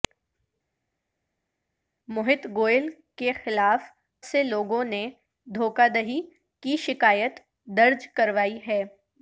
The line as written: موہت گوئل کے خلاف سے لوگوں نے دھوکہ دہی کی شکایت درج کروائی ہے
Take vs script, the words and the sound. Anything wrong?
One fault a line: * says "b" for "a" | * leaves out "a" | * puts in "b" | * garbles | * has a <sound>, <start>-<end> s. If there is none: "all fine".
all fine